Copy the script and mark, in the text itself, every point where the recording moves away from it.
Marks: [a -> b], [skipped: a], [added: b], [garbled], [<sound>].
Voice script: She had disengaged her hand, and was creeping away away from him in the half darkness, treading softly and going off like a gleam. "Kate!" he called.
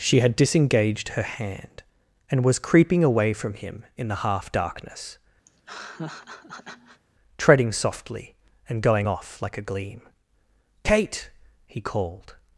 She had disengaged her hand, and was creeping away [skipped: away] from him in the half darkness, [laugh] treading softly and going off like a gleam. "Kate!" he called.